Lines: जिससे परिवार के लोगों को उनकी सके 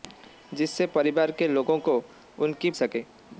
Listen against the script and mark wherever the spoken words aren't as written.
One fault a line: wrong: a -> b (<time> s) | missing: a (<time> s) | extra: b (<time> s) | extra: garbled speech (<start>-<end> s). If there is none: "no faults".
no faults